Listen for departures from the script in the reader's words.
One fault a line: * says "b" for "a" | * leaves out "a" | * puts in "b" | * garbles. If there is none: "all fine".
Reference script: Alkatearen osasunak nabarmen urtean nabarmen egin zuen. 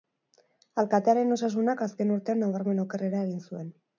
* says "azken" for "nabarmen"
* puts in "okerrera"